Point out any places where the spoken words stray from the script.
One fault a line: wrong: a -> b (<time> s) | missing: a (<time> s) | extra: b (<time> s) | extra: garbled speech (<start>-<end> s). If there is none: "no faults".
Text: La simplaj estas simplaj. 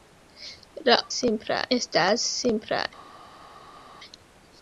no faults